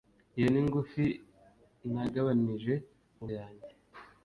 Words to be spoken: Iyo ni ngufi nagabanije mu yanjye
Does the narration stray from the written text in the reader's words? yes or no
no